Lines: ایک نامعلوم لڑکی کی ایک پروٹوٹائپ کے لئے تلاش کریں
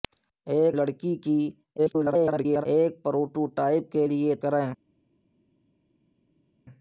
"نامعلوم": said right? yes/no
no